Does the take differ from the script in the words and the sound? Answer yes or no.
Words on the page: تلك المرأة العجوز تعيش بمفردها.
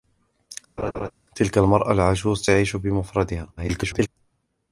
yes